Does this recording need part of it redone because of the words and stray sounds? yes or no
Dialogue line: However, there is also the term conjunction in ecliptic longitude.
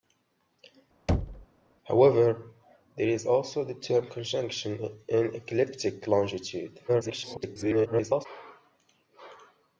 yes